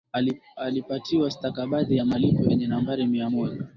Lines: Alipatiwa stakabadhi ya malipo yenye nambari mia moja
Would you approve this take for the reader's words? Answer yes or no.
yes